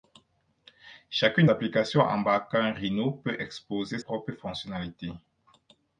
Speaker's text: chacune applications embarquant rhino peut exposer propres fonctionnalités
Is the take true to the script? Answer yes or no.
yes